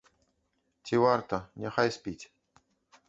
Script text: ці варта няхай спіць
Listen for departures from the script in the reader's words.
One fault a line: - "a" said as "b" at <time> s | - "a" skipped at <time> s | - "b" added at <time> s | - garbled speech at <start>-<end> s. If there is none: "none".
none